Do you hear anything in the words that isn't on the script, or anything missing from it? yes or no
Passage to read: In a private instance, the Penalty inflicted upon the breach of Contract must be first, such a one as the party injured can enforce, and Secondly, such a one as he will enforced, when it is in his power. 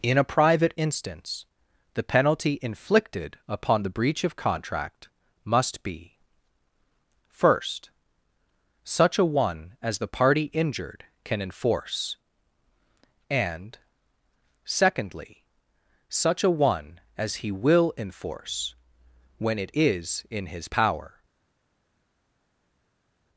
yes